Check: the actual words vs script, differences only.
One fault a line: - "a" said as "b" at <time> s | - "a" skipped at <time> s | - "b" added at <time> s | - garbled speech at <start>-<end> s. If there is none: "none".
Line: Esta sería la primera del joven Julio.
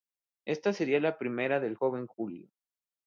none